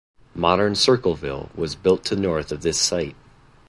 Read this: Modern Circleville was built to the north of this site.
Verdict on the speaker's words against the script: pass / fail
fail